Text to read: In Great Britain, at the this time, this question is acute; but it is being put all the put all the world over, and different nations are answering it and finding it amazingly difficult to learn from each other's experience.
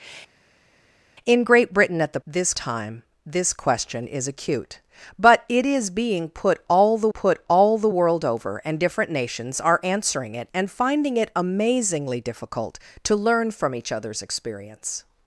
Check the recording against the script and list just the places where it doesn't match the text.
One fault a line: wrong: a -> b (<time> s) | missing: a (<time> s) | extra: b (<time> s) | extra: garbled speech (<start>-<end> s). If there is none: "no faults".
no faults